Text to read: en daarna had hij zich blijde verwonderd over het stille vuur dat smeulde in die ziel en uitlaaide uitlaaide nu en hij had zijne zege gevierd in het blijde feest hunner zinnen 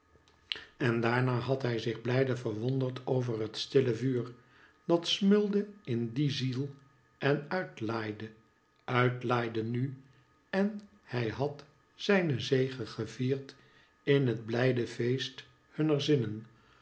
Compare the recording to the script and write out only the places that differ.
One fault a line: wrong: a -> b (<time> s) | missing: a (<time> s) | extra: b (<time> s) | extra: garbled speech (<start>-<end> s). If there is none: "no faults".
no faults